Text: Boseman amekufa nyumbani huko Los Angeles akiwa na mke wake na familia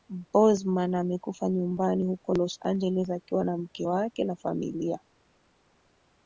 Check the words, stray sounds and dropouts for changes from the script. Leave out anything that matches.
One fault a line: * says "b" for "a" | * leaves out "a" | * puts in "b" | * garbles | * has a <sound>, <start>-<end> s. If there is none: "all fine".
all fine